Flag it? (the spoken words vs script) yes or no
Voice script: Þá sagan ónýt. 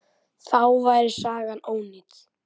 yes